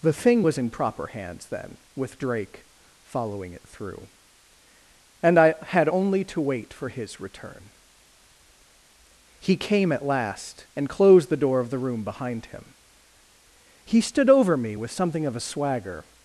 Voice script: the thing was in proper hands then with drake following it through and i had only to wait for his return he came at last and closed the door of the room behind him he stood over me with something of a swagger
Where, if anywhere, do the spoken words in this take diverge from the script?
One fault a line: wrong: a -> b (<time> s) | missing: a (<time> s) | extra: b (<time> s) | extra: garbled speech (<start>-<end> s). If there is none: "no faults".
no faults